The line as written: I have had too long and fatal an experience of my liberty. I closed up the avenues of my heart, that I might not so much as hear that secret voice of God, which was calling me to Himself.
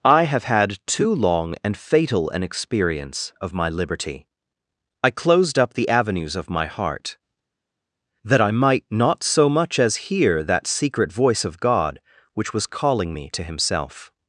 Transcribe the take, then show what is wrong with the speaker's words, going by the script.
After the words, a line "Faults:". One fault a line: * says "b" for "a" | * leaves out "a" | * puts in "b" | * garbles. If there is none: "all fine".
I have had too long and fatal an experience of my liberty. I closed up the avenues of my heart, that I might not so much as hear that secret voice of God, which was calling me to Himself.
Faults:
all fine